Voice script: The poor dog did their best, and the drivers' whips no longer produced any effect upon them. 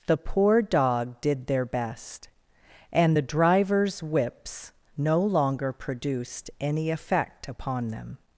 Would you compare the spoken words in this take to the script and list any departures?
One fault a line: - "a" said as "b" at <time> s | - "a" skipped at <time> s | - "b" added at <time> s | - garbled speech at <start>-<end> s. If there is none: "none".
none